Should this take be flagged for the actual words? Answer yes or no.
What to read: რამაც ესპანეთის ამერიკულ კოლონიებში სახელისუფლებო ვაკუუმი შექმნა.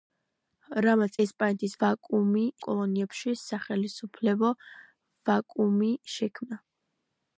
yes